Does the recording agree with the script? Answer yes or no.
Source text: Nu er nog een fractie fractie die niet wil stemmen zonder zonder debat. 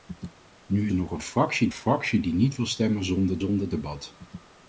yes